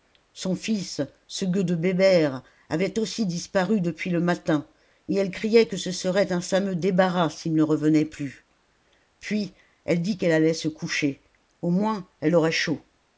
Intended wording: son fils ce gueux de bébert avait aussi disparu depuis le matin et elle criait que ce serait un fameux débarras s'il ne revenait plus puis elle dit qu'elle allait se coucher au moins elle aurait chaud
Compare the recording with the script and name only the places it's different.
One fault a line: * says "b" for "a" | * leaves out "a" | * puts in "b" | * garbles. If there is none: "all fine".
all fine